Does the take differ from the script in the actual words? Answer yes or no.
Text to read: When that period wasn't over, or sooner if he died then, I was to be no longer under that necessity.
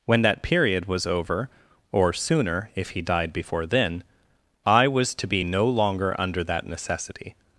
yes